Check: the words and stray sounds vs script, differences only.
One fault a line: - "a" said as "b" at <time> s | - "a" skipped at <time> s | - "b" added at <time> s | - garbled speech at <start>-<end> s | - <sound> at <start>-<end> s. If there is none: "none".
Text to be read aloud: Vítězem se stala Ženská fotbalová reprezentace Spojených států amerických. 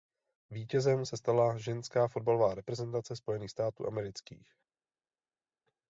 none